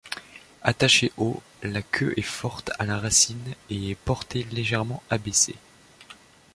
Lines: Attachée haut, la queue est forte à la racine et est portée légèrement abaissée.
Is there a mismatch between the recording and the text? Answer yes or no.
no